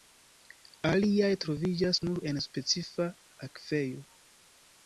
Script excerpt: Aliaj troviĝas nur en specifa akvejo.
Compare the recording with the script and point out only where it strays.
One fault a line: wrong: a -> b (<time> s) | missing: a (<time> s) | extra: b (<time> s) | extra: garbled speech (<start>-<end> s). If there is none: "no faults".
no faults